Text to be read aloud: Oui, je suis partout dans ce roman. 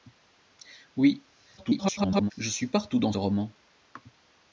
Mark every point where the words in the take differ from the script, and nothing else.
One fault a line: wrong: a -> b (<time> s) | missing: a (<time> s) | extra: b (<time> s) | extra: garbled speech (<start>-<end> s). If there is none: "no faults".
extra: garbled speech (1.6-2.3 s)
missing: ce (3.1 s)